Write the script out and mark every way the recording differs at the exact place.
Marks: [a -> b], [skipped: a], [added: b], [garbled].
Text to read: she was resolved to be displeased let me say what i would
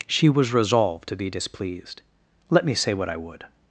she was resolved to be displeased let me say what i would